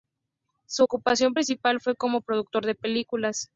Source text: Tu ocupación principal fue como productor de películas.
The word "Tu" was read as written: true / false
false